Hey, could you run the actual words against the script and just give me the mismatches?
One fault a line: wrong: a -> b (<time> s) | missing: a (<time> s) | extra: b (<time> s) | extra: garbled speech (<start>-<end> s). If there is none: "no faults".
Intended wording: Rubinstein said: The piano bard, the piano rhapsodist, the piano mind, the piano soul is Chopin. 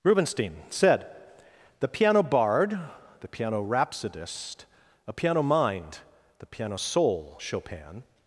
wrong: the -> a (5.1 s)
missing: is (7.4 s)